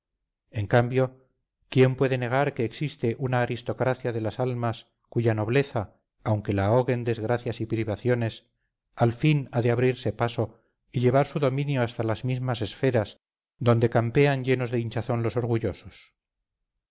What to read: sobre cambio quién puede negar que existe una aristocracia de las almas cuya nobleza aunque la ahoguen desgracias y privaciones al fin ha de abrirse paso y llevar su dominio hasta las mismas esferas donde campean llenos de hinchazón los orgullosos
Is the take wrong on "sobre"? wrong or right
wrong